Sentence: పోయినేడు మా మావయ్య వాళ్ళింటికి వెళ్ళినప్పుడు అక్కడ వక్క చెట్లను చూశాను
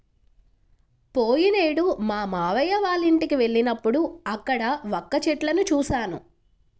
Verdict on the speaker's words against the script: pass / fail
pass